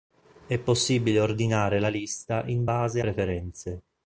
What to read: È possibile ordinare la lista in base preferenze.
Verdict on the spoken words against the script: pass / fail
pass